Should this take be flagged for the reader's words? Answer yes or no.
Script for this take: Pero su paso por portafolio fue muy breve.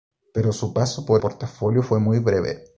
no